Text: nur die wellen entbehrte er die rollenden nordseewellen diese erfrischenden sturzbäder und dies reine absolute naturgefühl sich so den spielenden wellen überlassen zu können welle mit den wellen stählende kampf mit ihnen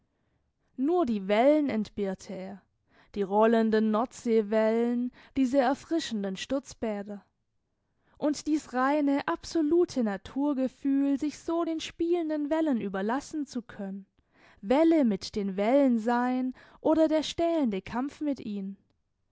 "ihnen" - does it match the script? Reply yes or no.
yes